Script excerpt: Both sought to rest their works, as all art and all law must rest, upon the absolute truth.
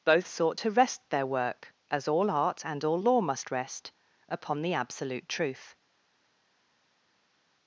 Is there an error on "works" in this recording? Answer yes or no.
yes